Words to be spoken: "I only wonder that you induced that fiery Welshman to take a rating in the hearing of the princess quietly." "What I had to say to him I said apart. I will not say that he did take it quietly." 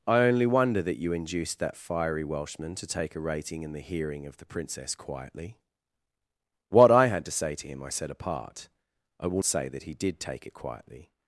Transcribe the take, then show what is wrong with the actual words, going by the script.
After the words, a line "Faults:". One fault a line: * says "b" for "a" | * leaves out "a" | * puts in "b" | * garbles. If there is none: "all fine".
"I only wonder that you induced that fiery Welshman to take a rating in the hearing of the princess quietly." "What I had to say to him I said apart. I will say that he did take it quietly."
Faults:
* leaves out "not"